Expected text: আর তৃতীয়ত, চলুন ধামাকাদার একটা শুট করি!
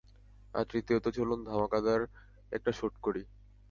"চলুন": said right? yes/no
yes